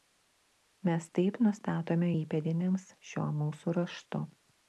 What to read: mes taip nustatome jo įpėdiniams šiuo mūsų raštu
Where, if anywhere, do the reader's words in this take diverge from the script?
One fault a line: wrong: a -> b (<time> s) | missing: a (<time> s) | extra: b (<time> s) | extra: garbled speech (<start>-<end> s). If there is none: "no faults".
missing: jo (2.1 s)